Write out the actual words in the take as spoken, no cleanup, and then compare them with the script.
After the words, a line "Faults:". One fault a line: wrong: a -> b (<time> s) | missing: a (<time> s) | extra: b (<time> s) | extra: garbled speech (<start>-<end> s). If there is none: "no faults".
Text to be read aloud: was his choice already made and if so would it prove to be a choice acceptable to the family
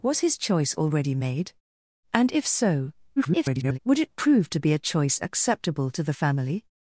was his choice already made and if so [garbled] would it prove to be a choice acceptable to the family
Faults:
extra: garbled speech (3.2-3.8 s)